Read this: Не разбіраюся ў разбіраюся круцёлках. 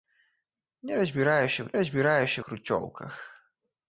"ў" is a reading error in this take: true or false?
false